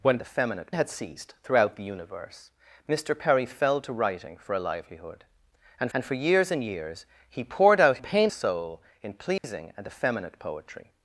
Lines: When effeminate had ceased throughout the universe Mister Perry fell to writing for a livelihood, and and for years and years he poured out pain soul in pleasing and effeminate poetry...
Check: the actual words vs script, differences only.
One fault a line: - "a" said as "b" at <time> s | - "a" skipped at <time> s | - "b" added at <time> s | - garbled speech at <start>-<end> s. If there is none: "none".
none